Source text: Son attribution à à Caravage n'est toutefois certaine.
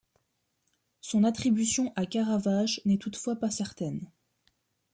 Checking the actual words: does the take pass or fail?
fail